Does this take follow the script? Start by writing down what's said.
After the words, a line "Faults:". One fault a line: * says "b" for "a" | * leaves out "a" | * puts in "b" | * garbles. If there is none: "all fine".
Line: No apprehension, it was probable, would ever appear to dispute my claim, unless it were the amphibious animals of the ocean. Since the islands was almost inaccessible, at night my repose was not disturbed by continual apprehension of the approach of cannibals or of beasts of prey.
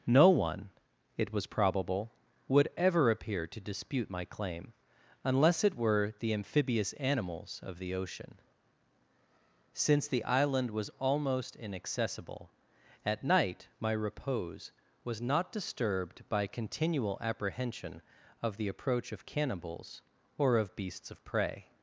No one, it was probable, would ever appear to dispute my claim, unless it were the amphibious animals of the ocean. Since the island was almost inaccessible, at night my repose was not disturbed by continual apprehension of the approach of cannibals or of beasts of prey.
Faults:
* says "one" for "apprehension"
* says "island" for "islands"